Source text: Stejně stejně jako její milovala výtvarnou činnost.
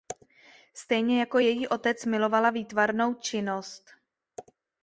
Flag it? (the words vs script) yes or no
yes